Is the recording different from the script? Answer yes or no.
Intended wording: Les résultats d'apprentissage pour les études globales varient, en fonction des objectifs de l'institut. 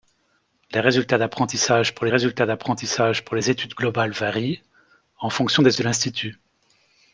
yes